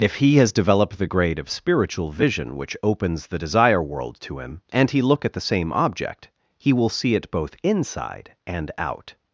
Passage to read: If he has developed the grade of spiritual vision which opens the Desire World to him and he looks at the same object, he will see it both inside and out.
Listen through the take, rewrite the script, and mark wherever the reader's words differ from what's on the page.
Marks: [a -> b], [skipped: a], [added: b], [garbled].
If he has developed the grade of spiritual vision which opens the Desire World to him and he [looks -> look] at the same object, he will see it both inside and out.